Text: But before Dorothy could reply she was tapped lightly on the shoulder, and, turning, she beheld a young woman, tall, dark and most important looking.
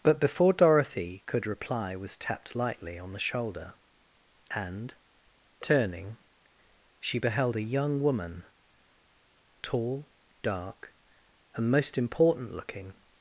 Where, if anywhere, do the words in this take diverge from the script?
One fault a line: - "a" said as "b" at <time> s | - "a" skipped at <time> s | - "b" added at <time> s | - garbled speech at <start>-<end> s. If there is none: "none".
- "she" skipped at 1.9 s